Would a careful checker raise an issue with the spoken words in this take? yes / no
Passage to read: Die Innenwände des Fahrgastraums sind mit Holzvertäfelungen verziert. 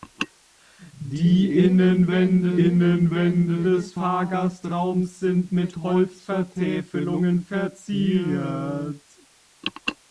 yes